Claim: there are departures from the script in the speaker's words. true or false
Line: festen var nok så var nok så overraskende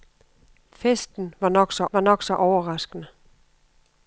false